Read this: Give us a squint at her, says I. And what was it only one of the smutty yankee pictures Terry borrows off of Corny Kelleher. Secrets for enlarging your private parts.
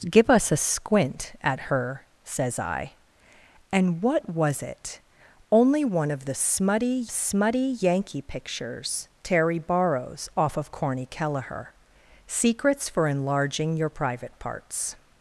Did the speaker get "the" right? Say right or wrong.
right